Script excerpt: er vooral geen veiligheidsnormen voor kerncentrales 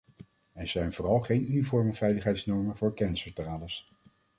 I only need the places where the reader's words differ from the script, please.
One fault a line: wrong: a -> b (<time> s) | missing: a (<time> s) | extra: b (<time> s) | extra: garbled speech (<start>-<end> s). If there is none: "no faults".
extra: zijn (0.7 s)
extra: uniforme (1.4 s)